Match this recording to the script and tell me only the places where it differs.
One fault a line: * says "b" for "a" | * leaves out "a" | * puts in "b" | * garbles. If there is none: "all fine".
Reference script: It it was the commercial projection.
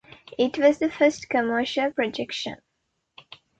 * leaves out "it"
* puts in "first"